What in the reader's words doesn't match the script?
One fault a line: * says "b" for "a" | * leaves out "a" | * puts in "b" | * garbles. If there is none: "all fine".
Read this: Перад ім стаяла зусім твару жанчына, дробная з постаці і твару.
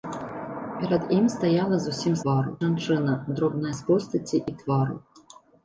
all fine